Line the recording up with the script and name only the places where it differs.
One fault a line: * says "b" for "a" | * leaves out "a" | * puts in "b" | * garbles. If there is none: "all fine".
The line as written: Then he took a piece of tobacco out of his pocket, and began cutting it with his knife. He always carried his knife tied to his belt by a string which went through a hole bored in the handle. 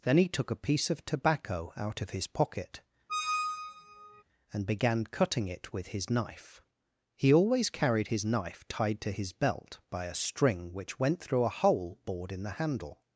all fine